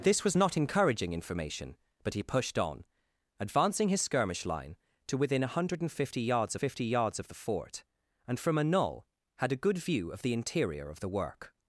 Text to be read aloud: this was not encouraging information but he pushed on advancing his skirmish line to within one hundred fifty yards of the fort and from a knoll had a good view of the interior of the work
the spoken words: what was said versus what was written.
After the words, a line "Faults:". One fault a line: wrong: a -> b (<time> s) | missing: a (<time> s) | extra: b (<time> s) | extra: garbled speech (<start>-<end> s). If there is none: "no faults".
this was not encouraging information but he pushed on advancing his skirmish line to within one hundred fifty yards fifty yards of the fort and from a knoll had a good view of the interior of the work
Faults:
extra: fifty yards (6.5 s)